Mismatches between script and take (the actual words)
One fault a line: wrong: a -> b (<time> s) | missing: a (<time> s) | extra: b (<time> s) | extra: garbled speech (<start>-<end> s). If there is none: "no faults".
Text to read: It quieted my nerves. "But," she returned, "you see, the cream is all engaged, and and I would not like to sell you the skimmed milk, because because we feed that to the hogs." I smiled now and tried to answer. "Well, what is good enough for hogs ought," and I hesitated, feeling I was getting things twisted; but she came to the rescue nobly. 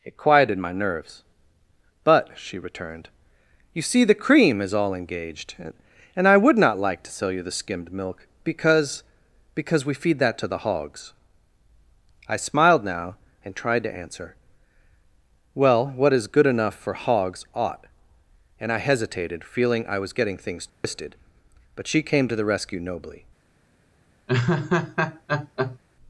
missing: and (6.3 s)